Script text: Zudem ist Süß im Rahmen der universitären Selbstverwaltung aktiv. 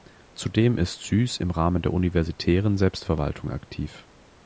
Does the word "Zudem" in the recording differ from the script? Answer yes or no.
no